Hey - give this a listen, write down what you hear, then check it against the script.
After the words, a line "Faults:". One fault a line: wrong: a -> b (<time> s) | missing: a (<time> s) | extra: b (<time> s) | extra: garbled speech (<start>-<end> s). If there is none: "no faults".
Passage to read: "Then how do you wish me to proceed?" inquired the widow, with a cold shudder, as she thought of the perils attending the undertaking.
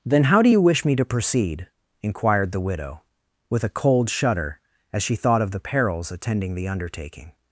"Then how do you wish me to proceed?" inquired the widow, with a cold shudder, as she thought of the perils attending the undertaking.
Faults:
no faults